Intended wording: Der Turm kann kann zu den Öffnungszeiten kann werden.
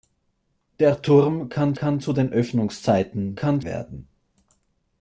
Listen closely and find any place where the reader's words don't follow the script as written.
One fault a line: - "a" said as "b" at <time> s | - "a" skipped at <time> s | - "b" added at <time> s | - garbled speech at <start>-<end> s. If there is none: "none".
none